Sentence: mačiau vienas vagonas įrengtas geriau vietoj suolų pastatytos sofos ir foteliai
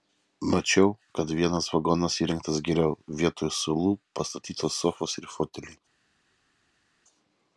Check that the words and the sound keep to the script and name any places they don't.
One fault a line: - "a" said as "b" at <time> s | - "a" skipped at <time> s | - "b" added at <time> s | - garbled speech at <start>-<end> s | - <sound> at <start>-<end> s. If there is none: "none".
- "kad" added at 1.2 s